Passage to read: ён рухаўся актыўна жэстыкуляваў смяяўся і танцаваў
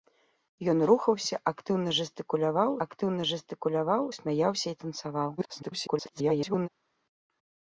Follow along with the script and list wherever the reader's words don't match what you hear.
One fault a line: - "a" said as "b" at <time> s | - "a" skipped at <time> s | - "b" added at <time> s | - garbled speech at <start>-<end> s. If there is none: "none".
- "актыўна жэстыкуляваў" added at 2.9 s
- garbled speech at 5.4-6.7 s